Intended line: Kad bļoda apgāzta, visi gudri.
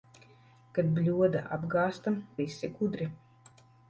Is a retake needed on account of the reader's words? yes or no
no